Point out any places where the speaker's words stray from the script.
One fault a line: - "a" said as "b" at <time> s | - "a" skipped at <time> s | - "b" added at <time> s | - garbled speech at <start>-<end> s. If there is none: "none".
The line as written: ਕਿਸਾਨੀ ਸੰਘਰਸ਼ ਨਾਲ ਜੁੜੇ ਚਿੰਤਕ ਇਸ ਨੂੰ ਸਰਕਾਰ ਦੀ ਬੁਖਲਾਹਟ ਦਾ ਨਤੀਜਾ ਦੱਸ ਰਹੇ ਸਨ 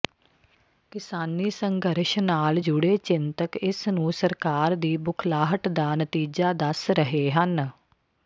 - "ਸਨ" said as "ਹਨ" at 7.3 s